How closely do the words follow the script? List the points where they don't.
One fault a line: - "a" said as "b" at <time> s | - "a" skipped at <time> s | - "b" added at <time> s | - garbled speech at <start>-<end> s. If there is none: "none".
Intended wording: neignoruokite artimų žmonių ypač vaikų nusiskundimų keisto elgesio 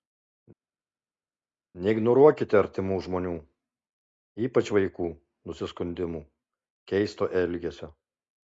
none